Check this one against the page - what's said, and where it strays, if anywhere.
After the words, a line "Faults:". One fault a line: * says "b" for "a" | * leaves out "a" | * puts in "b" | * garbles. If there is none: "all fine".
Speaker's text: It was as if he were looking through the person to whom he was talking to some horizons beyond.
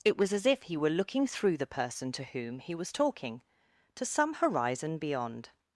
It was as if he were looking through the person to whom he was talking to some horizon beyond.
Faults:
* says "horizon" for "horizons"